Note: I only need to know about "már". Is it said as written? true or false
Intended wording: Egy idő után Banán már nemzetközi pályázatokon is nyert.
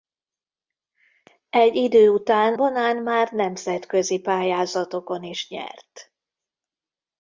true